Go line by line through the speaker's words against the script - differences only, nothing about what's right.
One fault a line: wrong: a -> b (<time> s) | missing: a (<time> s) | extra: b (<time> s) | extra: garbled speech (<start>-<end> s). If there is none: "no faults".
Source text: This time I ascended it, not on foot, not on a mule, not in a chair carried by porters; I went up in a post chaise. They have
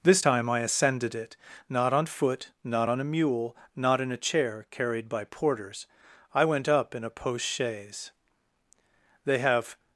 no faults